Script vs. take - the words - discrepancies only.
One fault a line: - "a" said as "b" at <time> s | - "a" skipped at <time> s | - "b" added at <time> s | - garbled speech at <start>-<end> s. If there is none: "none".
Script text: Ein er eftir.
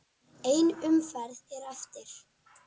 - "umferð" added at 0.9 s